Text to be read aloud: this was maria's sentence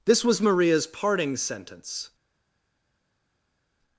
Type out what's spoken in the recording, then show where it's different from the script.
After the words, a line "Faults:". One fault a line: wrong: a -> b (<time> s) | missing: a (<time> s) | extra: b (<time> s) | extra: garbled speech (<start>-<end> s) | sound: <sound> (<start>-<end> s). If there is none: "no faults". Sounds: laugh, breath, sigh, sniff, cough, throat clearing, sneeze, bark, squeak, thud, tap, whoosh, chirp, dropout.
this was maria's parting sentence
Faults:
extra: parting (0.9 s)